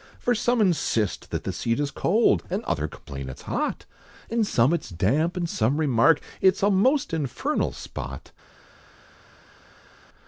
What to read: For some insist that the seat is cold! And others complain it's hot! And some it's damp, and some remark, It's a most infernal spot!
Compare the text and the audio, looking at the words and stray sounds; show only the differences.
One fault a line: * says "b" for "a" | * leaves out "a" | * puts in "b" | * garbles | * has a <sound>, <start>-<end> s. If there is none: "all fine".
all fine